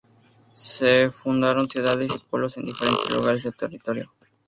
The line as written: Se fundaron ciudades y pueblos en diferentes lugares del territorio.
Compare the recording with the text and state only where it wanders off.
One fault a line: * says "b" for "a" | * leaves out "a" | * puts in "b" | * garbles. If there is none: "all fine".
all fine